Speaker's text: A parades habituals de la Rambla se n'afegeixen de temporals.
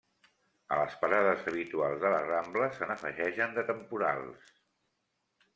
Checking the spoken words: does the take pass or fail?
fail